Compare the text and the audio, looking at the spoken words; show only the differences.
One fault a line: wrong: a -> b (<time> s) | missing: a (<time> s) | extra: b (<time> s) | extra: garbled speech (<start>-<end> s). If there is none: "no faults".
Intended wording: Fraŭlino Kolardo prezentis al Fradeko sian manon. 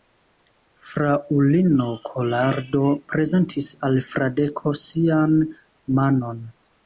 no faults